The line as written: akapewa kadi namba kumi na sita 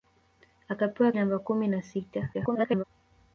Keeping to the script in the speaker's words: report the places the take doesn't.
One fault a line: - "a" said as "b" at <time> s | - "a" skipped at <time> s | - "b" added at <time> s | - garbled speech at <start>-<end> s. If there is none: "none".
- "kadi" skipped at 1.1 s
- garbled speech at 2.3-2.8 s